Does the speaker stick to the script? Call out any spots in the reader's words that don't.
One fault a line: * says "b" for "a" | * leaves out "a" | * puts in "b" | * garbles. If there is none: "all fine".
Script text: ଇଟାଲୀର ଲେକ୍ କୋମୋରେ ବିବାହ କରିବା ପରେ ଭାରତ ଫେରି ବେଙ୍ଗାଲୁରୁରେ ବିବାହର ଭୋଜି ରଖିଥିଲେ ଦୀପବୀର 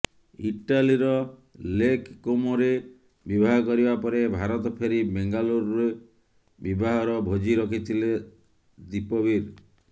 all fine